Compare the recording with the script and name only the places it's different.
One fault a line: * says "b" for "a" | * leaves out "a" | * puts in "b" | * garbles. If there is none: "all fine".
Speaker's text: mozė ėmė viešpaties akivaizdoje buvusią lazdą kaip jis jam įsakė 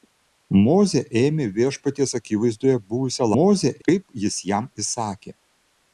* says "mozė" for "lazdą"